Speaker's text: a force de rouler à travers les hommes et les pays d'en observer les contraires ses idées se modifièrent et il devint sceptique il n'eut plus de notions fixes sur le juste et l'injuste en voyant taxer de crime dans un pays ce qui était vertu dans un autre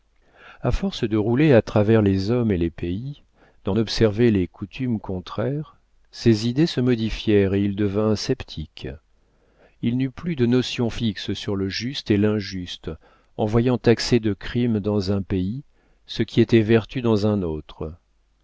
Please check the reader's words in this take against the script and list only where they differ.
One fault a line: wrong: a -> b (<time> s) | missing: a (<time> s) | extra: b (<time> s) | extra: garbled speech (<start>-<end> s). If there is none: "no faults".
extra: coutumes (4.5 s)